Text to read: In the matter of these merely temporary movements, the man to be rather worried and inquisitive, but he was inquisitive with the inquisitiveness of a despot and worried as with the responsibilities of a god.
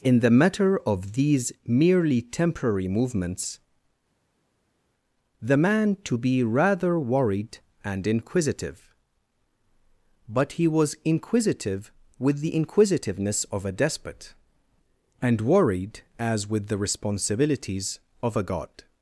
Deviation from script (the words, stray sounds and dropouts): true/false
false